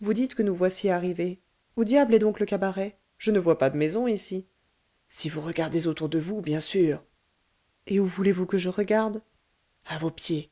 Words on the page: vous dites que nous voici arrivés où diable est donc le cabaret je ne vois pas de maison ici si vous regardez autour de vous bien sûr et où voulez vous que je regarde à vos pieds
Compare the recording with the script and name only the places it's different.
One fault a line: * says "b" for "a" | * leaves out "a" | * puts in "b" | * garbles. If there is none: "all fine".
all fine